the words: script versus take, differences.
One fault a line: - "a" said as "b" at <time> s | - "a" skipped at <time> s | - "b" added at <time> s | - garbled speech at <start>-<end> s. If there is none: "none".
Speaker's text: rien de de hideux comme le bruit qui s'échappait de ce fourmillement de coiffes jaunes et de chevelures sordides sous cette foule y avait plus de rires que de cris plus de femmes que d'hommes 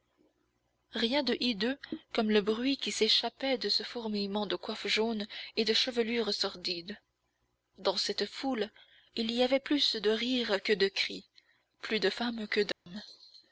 - "de" skipped at 1.4 s
- "sous" said as "dans" at 7.8 s
- "il" added at 9.2 s